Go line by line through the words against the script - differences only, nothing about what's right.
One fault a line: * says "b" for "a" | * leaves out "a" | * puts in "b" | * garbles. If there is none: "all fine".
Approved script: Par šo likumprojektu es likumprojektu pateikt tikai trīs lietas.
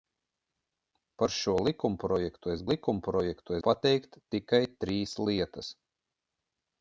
all fine